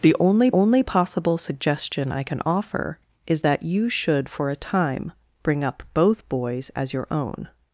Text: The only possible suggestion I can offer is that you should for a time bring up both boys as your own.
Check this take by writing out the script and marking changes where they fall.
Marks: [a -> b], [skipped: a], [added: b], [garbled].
The only [added: only] possible suggestion I can offer is that you should for a time bring up both boys as your own.